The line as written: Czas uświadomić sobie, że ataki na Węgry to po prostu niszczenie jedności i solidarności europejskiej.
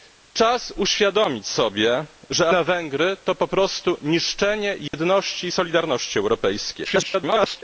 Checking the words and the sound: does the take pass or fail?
fail